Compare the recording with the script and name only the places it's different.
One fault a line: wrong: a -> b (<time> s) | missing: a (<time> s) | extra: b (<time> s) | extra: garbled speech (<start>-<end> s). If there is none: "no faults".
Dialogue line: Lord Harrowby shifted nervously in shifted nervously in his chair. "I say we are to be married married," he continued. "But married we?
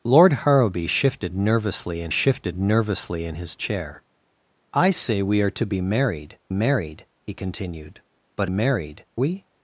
no faults